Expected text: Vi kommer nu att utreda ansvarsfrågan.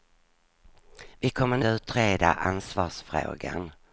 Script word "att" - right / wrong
wrong